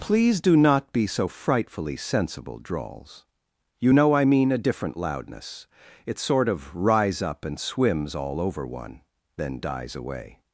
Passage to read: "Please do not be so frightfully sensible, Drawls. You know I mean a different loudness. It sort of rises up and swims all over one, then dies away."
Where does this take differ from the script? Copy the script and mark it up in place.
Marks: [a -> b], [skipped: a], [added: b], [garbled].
"Please do not be so frightfully sensible, Drawls. You know I mean a different loudness. It sort of [rises -> rise] up and swims all over one, then dies away."